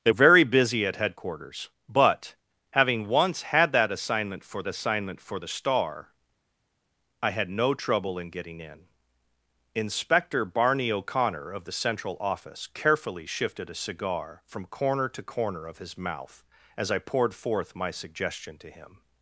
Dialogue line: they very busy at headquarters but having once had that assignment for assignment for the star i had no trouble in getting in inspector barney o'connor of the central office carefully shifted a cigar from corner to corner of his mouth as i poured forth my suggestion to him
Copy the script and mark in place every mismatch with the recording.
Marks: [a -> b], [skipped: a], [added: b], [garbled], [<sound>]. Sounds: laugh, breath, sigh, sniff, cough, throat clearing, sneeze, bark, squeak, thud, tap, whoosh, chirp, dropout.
they very busy at headquarters but having once had that assignment for assignment for the star i had no trouble in getting in inspector barney o'connor of the central office carefully shifted a cigar from corner to corner of his mouth as i poured forth my suggestion to him